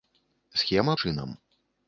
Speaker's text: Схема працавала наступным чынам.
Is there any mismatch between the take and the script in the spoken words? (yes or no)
yes